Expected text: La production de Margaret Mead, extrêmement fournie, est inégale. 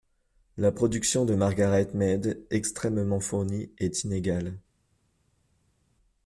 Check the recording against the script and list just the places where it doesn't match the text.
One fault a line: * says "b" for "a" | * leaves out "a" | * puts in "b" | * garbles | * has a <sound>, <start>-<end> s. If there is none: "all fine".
all fine